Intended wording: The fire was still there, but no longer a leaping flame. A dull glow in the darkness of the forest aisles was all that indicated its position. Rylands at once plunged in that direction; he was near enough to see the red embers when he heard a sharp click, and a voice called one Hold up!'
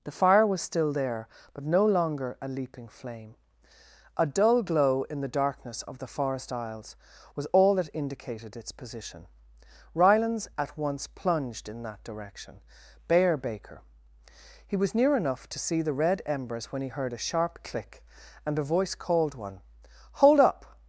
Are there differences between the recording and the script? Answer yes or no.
yes